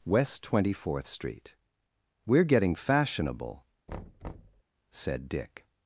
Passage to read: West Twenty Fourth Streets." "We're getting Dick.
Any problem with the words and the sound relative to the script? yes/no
yes